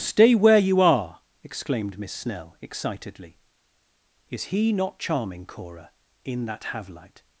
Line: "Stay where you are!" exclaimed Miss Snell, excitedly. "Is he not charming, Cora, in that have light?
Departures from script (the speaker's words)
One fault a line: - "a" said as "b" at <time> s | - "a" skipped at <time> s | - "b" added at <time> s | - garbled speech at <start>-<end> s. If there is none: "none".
none